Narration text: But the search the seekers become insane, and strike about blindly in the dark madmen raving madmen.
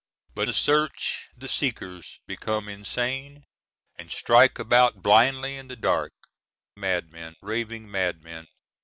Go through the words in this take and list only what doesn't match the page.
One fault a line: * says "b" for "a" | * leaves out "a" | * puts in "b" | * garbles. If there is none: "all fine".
all fine